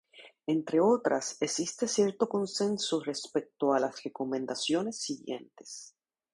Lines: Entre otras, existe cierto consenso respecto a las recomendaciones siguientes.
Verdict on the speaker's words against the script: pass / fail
pass